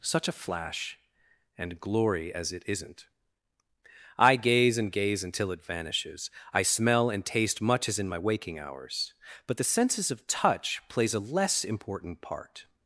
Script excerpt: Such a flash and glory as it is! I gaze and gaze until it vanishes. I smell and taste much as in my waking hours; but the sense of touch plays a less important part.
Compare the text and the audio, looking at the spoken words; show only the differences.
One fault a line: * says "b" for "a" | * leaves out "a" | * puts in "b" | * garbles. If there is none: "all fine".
* says "isn't" for "is"
* says "senses" for "sense"